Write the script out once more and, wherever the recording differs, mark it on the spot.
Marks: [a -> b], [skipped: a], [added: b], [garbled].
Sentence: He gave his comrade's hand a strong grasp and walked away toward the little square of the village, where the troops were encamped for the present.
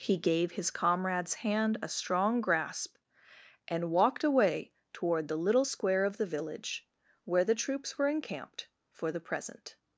He gave his comrade's hand a strong grasp and walked away toward the little square of the village, where the troops were encamped for the present.